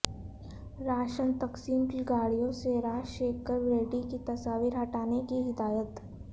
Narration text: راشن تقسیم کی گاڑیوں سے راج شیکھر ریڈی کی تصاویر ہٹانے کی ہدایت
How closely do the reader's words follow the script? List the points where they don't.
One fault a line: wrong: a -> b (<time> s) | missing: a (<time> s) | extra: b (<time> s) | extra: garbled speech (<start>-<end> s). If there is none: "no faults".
no faults